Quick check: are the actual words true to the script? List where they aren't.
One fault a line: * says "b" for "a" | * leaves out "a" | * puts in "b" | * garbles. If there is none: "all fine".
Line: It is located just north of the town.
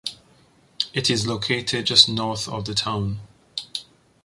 all fine